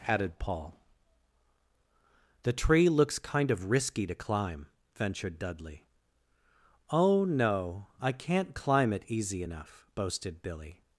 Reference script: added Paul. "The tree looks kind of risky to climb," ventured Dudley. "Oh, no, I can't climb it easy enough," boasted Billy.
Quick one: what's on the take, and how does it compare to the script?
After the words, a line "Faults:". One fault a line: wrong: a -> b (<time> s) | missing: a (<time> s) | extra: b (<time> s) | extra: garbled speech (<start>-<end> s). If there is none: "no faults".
added Paul. "The tree looks kind of risky to climb," ventured Dudley. "Oh, no, I can't climb it easy enough," boasted Billy.
Faults:
no faults